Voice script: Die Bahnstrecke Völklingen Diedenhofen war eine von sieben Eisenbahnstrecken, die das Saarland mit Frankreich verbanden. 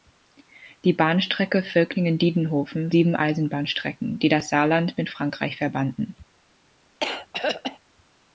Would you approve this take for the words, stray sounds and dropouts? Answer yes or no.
no